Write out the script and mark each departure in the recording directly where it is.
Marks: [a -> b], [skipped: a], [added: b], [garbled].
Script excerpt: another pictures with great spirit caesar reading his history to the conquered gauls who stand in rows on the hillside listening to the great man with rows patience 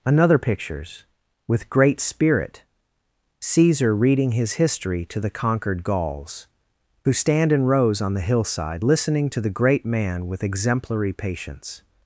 another pictures with great spirit caesar reading his history to the conquered gauls who stand in rows on the hillside listening to the great man with [rows -> exemplary] patience